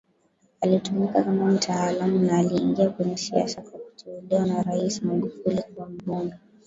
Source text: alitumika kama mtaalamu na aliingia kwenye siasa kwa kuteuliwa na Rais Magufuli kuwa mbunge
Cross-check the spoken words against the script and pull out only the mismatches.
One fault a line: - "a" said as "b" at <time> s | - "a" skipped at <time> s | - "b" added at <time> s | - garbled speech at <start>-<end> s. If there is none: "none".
none